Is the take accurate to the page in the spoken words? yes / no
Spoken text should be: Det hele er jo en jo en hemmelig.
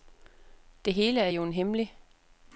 no